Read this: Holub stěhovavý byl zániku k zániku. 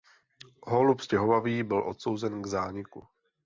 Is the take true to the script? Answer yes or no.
no